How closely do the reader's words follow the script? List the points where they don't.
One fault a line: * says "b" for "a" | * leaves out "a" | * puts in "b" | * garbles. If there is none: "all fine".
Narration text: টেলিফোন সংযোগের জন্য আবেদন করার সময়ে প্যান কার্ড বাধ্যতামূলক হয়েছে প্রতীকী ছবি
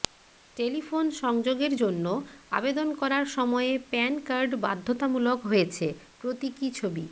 all fine